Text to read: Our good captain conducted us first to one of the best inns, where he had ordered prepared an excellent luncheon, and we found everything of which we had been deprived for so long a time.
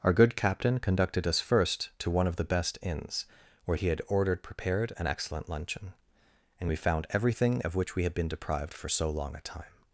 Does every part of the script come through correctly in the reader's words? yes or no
yes